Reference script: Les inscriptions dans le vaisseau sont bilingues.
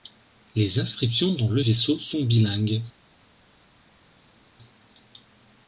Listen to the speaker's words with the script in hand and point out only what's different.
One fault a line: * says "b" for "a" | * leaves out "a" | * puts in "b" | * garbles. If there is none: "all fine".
all fine